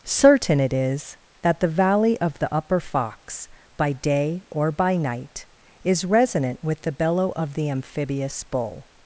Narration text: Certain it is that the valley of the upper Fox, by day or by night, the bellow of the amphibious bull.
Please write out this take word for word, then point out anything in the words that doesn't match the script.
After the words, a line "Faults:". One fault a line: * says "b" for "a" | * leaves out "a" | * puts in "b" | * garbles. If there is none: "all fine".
Certain it is that the valley of the upper Fox, by day or by night, is resonant with the bellow of the amphibious bull.
Faults:
* puts in "is resonant with"